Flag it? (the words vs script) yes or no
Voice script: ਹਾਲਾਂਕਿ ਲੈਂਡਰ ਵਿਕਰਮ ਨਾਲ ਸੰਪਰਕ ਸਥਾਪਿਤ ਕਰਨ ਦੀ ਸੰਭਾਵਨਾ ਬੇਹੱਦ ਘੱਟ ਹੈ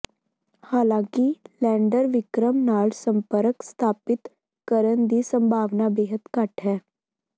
no